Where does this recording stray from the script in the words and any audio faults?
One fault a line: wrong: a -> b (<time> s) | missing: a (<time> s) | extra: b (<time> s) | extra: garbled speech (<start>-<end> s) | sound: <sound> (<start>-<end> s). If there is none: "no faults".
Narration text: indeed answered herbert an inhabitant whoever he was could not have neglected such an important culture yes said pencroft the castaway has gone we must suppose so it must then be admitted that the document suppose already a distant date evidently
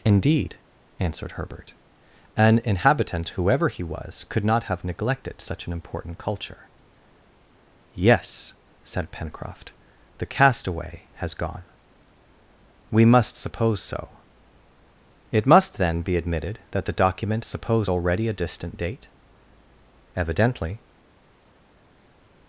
no faults